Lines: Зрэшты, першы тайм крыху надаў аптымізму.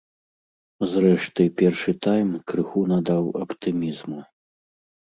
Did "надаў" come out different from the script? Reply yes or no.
no